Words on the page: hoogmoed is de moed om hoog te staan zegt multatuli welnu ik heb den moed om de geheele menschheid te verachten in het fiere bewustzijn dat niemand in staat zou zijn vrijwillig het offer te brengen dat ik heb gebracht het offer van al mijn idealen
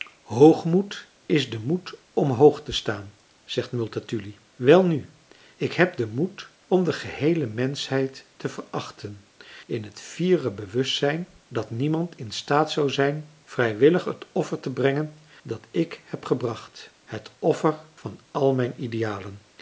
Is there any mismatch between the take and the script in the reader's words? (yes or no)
no